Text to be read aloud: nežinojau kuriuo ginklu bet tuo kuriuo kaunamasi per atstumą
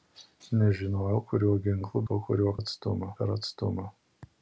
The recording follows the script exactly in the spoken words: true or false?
false